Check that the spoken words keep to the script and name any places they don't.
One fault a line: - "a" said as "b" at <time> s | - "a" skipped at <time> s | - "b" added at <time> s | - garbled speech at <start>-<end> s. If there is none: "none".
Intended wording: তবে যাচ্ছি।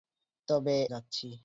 none